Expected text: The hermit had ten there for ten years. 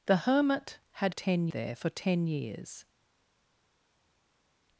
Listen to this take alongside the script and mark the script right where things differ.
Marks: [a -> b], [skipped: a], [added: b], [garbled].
The hermit had ten there for ten years.